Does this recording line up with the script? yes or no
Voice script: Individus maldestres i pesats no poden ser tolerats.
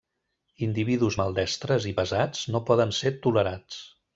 yes